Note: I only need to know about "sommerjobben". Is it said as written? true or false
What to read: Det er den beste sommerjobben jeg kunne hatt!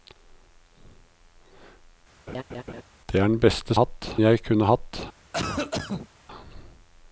false